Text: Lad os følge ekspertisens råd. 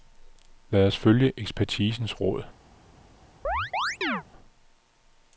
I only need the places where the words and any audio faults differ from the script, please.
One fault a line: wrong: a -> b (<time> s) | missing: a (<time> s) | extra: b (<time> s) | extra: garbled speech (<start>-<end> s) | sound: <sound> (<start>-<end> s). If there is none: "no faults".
sound: chirp (3.4-4.2 s)